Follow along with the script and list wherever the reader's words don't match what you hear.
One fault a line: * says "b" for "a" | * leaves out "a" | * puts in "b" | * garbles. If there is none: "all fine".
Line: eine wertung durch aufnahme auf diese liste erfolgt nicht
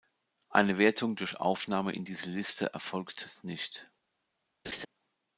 * says "in" for "auf"